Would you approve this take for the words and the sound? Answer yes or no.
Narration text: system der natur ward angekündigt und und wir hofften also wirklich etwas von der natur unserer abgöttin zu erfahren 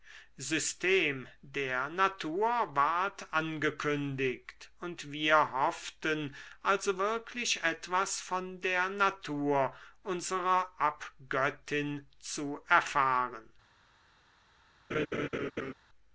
no